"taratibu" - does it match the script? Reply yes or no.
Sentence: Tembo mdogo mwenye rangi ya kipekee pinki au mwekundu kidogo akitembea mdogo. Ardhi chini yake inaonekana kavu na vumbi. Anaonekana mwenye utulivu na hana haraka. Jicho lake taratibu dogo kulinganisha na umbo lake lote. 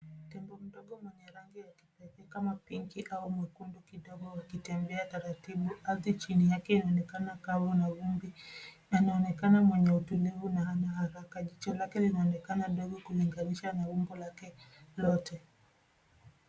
no